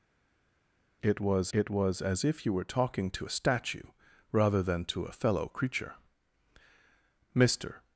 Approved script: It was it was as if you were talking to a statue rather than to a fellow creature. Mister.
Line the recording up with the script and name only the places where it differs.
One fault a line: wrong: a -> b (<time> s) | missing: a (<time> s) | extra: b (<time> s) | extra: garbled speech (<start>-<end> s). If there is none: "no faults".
no faults